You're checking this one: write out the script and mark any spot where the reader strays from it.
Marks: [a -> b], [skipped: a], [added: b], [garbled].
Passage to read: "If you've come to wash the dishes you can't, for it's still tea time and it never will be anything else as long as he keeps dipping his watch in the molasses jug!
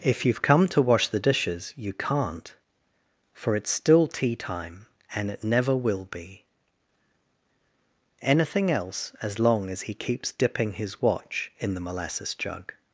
"If you've come to wash the dishes you can't, for it's still tea time and it never will be anything else as long as he keeps dipping his watch in the molasses jug!